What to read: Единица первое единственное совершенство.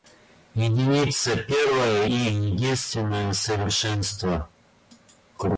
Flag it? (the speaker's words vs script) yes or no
no